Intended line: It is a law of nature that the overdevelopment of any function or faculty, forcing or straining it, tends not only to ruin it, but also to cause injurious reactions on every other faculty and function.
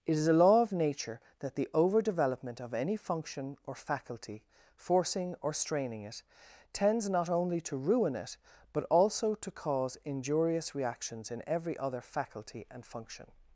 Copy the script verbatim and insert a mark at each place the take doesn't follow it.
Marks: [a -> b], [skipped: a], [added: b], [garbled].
It is a law of nature that the overdevelopment of any function or faculty, forcing or straining it, tends not only to ruin it, but also to cause injurious reactions [on -> in] every other faculty and function.